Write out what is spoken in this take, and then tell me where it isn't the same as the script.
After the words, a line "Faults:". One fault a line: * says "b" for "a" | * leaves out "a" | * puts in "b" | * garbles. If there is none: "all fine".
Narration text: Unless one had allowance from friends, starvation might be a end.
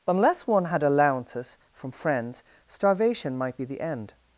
Unless one had allowances from friends, starvation might be the end.
Faults:
* says "allowances" for "allowance"
* says "the" for "a"